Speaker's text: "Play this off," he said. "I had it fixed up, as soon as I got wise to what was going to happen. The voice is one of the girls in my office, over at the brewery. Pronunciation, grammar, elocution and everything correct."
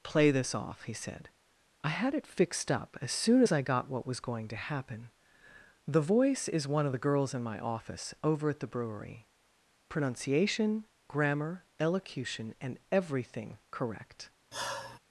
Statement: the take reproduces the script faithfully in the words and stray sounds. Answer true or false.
false